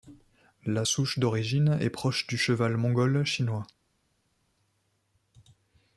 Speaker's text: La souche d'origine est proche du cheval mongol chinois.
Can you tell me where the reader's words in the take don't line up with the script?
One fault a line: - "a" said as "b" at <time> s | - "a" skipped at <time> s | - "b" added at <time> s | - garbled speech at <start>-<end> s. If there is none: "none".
none